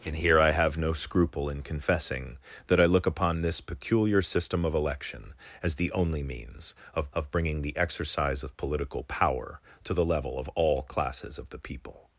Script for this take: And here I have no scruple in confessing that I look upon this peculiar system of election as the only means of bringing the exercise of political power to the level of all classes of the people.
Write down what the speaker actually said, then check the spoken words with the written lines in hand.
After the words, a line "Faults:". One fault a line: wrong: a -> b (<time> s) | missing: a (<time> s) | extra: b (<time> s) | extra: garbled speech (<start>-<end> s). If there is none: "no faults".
And here I have no scruple in confessing that I look upon this peculiar system of election as the only means of of bringing the exercise of political power to the level of all classes of the people.
Faults:
extra: of (7.1 s)